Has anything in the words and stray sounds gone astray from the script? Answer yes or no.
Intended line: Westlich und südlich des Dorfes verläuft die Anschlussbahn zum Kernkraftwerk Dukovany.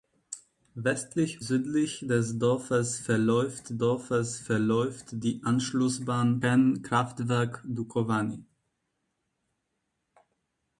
yes